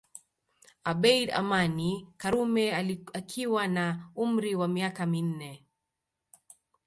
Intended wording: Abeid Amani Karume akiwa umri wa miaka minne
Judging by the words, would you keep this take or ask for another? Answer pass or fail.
fail